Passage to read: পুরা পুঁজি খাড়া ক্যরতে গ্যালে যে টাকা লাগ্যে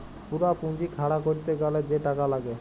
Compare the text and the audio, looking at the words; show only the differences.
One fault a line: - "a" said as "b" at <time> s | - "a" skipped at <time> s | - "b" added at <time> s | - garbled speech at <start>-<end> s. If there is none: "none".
none